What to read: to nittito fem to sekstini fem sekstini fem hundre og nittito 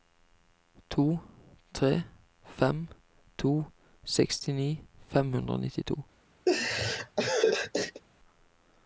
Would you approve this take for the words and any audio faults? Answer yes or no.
no